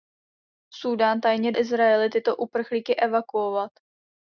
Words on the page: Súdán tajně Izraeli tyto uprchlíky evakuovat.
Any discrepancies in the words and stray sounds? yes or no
no